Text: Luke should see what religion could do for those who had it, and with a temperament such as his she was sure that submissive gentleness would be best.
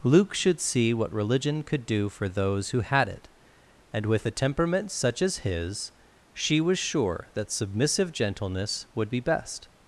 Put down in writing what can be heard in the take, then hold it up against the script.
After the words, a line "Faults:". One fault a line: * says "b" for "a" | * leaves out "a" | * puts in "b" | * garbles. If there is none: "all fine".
Luke should see what religion could do for those who had it, and with a temperament such as his she was sure that submissive gentleness would be best.
Faults:
all fine